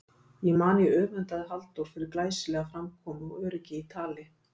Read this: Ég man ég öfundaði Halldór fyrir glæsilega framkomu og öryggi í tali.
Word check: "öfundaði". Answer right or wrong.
right